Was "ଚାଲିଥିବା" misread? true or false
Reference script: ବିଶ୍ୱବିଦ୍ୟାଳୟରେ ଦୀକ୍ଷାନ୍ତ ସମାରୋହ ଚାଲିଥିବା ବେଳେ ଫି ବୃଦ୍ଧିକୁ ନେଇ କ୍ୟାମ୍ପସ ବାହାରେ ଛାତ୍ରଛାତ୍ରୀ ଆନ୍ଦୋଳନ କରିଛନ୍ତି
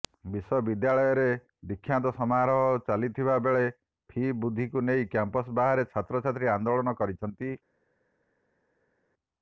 false